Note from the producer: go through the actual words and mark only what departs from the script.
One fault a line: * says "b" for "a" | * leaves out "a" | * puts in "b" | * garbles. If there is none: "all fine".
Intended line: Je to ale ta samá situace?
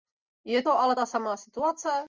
all fine